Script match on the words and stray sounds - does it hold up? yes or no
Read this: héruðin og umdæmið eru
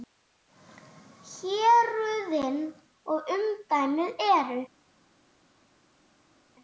yes